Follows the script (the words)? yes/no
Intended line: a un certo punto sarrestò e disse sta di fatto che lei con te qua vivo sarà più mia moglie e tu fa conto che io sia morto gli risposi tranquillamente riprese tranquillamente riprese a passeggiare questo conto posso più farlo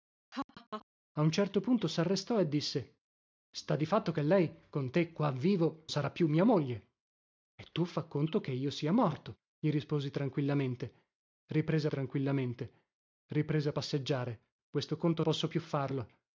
yes